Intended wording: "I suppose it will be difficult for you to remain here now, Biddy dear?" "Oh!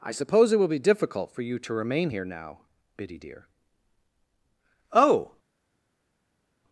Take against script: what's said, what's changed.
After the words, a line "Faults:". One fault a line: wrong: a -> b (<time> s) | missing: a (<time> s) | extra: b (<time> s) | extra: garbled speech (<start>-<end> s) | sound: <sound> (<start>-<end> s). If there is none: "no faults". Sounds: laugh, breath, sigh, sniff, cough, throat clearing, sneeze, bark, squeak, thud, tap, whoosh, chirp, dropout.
"I suppose it will be difficult for you to remain here now, Biddy dear?" "Oh!
Faults:
no faults